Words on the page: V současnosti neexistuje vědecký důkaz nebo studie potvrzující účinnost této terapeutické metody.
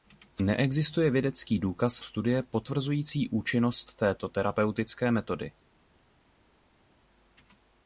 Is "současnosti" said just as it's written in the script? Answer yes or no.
no